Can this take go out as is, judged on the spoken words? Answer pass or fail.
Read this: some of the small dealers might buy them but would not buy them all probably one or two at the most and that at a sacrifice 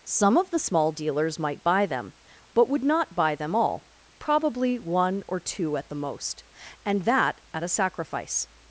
pass